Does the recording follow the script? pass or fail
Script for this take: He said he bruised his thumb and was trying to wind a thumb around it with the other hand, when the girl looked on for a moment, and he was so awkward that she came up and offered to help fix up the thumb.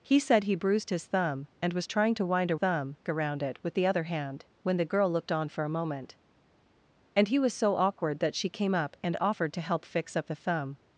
pass